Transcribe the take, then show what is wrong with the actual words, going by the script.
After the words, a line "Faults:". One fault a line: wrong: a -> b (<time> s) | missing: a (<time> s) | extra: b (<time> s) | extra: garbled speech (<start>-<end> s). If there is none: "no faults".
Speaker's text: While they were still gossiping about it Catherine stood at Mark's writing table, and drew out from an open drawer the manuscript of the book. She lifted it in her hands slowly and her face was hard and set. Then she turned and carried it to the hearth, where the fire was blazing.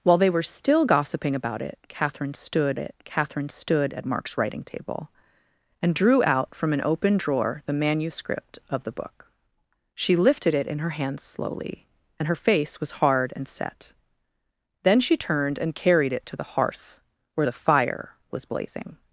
While they were still gossiping about it Catherine stood it Catherine stood at Mark's writing table, and drew out from an open drawer the manuscript of the book. She lifted it in her hands slowly and her face was hard and set. Then she turned and carried it to the hearth, where the fire was blazing.
Faults:
extra: it Catherine stood (2.8 s)